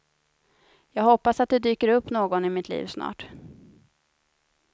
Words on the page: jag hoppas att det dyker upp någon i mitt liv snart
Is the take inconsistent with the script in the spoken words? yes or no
no